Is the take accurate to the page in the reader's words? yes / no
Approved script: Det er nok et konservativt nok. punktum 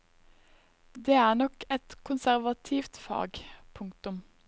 no